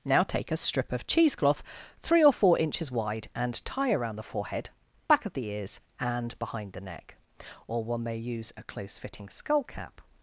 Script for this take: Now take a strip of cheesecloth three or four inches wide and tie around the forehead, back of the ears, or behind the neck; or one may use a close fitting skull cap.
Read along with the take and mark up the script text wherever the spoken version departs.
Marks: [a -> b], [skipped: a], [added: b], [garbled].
Now take a strip of cheesecloth three or four inches wide and tie around the forehead, back of the ears, [or -> and] behind the neck; or one may use a close fitting skull cap.